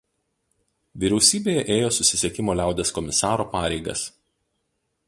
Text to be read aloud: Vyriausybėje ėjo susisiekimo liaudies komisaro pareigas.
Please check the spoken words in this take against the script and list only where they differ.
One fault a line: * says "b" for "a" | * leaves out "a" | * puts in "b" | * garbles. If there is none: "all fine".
all fine